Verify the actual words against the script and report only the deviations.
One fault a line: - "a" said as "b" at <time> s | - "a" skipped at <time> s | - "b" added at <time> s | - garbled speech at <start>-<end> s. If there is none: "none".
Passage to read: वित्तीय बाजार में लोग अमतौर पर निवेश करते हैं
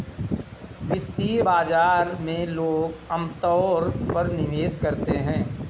none